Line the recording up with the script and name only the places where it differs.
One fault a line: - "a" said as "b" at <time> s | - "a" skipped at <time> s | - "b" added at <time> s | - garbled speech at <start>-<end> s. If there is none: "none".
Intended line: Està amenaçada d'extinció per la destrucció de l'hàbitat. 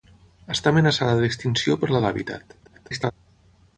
- "destrucció" skipped at 2.0 s
- garbled speech at 2.6-3.1 s